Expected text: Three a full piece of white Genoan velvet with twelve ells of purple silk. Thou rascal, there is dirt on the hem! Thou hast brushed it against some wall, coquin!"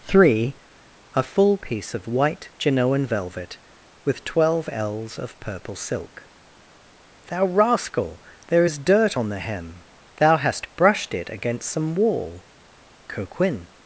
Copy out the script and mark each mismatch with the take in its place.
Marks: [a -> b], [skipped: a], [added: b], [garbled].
Three a full piece of white Genoan velvet with twelve ells of purple silk. Thou rascal, there is dirt on the hem! Thou hast brushed it against some wall, coquin!"